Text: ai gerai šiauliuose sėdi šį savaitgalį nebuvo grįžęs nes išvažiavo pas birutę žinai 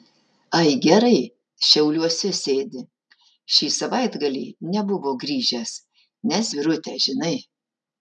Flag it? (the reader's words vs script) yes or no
yes